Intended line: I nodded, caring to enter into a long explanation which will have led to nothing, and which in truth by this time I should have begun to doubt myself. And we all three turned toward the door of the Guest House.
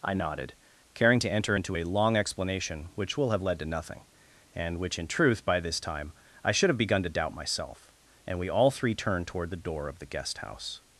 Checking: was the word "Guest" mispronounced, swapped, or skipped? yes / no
no